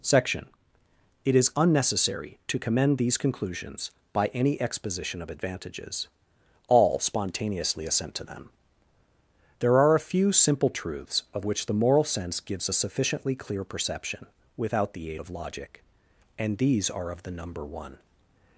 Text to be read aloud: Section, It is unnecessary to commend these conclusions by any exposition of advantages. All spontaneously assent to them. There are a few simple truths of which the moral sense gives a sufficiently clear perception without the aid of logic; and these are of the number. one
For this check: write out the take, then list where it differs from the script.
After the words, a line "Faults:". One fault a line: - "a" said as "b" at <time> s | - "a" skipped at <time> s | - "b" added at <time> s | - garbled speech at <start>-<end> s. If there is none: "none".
Section, It is unnecessary to commend these conclusions by any exposition of advantages. All spontaneously assent to them. There are a few simple truths of which the moral sense gives a sufficiently clear perception without the aid of logic; and these are of the number. one
Faults:
none